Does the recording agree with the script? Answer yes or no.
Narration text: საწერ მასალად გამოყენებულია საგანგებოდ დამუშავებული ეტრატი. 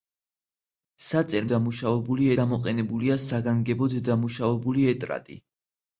no